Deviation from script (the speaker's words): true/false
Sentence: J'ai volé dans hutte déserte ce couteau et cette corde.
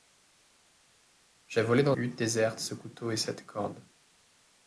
false